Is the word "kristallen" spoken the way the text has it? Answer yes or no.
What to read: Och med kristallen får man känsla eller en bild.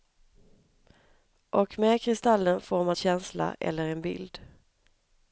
yes